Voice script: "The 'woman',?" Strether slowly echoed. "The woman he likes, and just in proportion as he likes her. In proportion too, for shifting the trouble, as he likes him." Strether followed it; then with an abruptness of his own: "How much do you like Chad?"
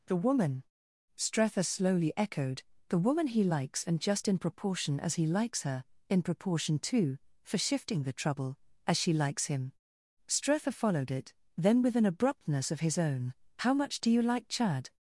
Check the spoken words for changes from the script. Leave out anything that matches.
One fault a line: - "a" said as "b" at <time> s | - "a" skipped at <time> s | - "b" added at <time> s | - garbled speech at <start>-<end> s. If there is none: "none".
- "he" said as "she" at 9.0 s